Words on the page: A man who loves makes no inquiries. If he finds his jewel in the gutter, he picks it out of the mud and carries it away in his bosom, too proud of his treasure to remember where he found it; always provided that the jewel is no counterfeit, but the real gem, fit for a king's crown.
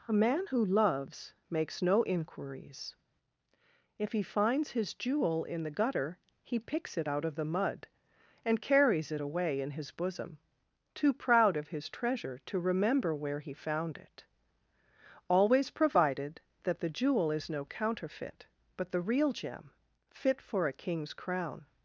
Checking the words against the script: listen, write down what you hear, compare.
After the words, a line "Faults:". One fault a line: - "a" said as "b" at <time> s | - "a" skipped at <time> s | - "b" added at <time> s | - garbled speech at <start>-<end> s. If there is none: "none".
A man who loves makes no inquiries. If he finds his jewel in the gutter, he picks it out of the mud and carries it away in his bosom, too proud of his treasure to remember where he found it; always provided that the jewel is no counterfeit, but the real gem, fit for a king's crown.
Faults:
none